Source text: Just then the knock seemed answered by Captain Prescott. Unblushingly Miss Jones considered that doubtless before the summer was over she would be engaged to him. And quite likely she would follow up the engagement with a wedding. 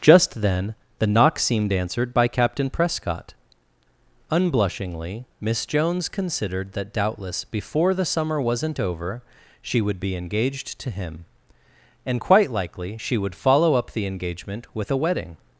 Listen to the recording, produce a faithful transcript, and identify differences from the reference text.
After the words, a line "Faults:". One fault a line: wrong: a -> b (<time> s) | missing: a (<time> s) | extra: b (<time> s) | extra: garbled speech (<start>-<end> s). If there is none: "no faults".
Just then the knock seemed answered by Captain Prescott. Unblushingly Miss Jones considered that doubtless before the summer wasn't over she would be engaged to him. And quite likely she would follow up the engagement with a wedding.
Faults:
wrong: was -> wasn't (8.4 s)